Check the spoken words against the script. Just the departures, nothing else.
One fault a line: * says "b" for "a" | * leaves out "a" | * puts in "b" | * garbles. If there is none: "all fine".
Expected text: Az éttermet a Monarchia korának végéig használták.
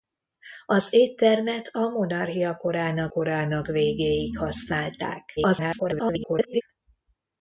* puts in "korának"
* garbles